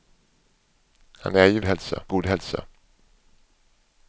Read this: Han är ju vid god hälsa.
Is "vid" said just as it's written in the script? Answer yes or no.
no